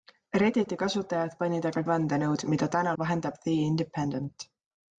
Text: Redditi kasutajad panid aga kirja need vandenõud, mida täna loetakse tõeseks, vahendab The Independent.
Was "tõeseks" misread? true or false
true